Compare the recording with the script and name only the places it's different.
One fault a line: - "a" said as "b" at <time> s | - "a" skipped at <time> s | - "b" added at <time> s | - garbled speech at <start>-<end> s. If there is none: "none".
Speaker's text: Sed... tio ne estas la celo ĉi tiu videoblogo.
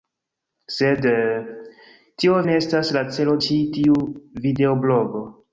none